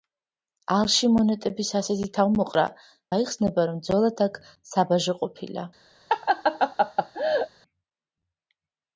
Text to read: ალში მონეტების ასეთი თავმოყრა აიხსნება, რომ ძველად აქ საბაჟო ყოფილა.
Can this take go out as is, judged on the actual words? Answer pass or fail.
pass